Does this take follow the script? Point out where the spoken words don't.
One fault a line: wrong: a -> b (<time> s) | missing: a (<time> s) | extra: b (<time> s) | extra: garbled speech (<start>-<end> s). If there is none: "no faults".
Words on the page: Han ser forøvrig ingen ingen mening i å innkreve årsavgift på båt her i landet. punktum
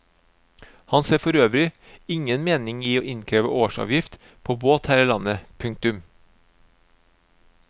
missing: ingen (2.5 s)